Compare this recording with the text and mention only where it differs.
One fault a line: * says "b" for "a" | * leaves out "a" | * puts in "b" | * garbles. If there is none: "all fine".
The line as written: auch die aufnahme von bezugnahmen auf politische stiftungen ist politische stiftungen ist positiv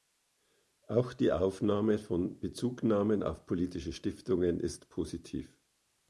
* leaves out "politische stiftungen ist"